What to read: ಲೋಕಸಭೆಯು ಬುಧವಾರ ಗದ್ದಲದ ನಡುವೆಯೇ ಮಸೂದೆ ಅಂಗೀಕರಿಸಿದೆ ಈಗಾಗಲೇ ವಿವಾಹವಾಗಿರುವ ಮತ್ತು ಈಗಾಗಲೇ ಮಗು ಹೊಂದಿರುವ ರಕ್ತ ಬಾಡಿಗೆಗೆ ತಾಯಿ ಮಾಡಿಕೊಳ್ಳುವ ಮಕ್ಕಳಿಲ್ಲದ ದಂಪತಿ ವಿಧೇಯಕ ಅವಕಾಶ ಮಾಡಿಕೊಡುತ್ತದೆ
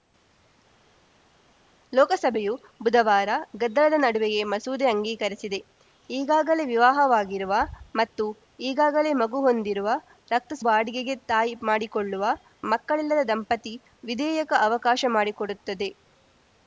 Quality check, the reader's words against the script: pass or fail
pass